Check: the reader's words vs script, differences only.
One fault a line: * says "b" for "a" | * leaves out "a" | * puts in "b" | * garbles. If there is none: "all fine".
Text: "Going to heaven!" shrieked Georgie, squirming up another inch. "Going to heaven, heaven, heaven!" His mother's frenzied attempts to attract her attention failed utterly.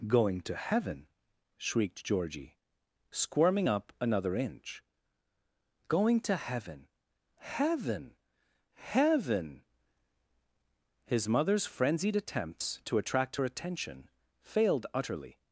all fine